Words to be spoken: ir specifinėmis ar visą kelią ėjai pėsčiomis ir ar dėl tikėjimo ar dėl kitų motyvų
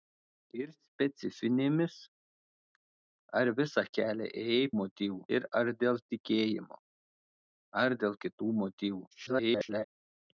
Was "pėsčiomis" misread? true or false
true